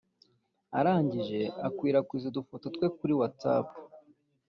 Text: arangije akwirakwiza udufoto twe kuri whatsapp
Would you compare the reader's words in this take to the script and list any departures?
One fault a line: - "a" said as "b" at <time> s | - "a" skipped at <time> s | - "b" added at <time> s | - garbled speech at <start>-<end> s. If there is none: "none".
none